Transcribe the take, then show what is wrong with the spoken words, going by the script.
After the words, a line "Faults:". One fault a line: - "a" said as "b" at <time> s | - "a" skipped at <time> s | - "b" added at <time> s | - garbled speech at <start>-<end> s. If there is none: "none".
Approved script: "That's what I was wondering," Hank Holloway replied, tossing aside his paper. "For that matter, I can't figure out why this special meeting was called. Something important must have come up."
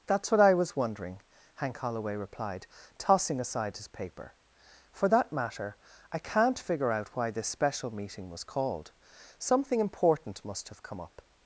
"That's what I was wondering," Hank Holloway replied, tossing aside his paper. "For that matter, I can't figure out why this special meeting was called. Something important must have come up."
Faults:
none